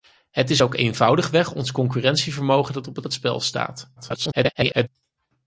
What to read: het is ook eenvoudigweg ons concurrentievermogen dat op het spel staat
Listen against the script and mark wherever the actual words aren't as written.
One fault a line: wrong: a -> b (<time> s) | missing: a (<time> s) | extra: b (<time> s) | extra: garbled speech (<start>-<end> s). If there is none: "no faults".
extra: het (3.0 s)
extra: garbled speech (4.0-4.9 s)